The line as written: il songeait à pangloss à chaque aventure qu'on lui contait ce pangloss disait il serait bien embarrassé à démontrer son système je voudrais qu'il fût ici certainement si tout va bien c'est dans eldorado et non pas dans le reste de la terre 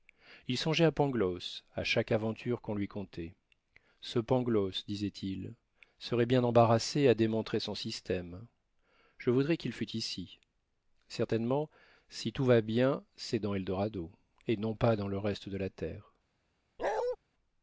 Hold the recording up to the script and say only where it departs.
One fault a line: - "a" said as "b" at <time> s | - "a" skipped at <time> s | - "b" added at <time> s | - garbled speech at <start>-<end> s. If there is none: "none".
none